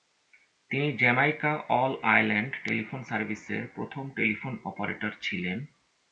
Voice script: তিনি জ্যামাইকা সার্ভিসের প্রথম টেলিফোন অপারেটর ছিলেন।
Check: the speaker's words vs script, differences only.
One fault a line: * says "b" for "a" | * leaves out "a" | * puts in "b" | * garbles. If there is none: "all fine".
* puts in "অল আইল্যান্ড টেলিফোন"